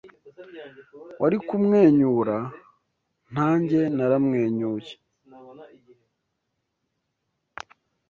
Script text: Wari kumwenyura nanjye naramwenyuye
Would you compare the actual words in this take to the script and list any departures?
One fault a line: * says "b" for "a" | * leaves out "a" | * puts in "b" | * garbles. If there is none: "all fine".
all fine